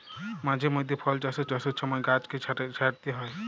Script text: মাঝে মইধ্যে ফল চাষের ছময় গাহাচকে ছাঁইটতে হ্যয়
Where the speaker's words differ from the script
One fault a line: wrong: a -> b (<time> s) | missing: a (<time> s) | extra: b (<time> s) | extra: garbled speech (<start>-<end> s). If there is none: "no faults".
extra: চাষের (1.5 s)